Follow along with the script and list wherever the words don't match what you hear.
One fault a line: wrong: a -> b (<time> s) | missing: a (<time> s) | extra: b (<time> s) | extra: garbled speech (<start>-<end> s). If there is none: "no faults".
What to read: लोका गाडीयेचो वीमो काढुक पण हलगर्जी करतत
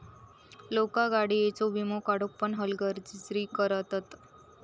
no faults